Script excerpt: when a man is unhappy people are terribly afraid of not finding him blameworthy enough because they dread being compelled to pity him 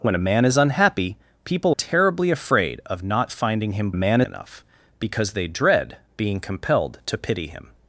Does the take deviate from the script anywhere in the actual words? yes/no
yes